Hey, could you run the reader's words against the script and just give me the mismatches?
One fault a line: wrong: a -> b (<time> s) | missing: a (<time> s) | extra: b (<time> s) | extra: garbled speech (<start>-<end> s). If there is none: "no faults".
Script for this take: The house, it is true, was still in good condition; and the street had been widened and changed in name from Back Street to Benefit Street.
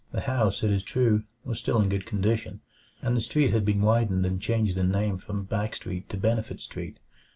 no faults